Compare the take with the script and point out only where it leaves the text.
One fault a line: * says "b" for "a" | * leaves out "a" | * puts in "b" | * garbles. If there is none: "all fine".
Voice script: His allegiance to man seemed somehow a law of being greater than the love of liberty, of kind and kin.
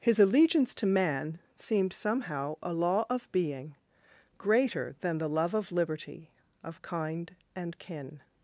all fine